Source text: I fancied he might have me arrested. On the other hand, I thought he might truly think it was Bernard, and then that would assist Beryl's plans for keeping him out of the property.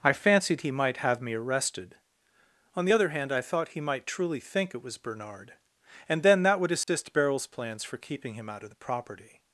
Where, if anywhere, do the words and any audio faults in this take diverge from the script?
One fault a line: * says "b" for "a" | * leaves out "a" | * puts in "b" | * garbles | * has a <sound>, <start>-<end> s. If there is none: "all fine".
* has a dropout, 6.8-6.9 s